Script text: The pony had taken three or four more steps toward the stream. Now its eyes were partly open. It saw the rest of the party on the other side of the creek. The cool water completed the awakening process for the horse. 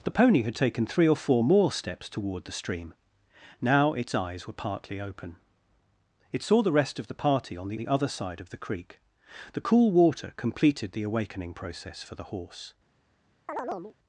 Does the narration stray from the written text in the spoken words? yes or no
yes